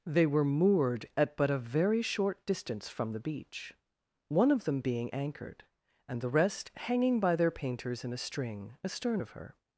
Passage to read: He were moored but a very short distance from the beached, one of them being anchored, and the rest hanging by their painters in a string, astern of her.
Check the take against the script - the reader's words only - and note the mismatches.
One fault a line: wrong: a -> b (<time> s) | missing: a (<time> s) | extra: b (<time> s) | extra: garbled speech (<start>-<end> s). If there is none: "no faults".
wrong: He -> They (0.1 s)
extra: at (1.1 s)
wrong: beached -> beach (3.2 s)